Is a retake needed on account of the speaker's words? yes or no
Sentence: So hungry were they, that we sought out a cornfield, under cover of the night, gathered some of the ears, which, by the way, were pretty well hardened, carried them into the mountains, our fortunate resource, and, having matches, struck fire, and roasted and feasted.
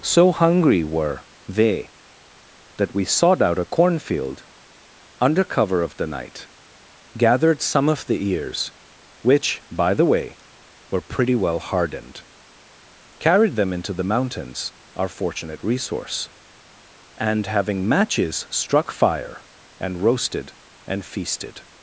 no